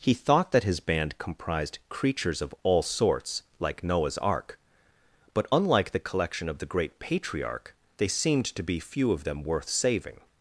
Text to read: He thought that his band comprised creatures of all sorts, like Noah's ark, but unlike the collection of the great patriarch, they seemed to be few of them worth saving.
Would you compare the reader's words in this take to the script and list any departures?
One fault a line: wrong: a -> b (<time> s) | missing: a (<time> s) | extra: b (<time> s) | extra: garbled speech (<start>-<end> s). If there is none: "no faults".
no faults